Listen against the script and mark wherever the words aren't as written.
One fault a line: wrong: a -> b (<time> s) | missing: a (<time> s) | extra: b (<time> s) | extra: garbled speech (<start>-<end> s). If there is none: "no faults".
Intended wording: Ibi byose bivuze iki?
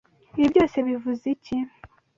no faults